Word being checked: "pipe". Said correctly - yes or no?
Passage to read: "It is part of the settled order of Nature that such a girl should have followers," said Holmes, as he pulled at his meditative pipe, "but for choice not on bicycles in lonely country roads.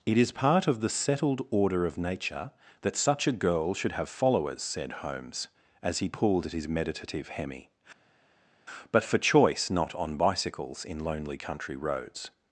no